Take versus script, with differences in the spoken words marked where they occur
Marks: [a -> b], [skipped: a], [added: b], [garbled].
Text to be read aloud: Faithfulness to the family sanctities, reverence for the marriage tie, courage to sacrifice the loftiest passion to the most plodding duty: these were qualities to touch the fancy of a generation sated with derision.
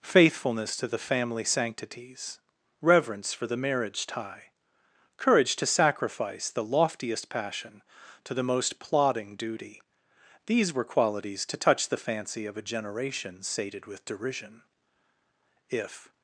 Faithfulness to the family sanctities, reverence for the marriage tie, courage to sacrifice the loftiest passion to the most plodding duty: these were qualities to touch the fancy of a generation sated with derision. [added: If]